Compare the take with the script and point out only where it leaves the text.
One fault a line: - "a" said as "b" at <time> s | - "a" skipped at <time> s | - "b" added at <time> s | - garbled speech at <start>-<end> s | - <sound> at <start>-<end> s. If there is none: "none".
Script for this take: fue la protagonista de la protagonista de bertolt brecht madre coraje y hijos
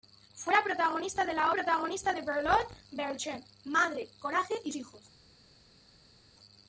none